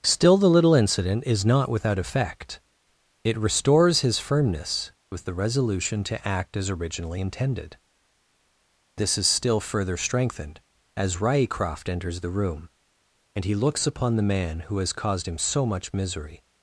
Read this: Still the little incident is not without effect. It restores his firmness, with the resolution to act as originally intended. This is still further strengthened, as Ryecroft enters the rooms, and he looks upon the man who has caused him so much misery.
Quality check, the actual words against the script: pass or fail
fail